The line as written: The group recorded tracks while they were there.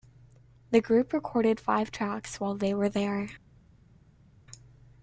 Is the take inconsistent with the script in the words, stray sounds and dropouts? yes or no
yes